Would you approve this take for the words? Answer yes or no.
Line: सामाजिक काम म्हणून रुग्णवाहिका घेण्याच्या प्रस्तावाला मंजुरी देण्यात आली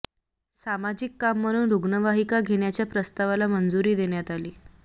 yes